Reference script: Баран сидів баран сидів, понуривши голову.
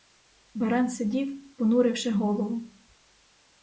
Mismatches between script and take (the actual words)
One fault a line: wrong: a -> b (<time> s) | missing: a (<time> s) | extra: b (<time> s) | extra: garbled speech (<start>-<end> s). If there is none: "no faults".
missing: баран сидів (1.6 s)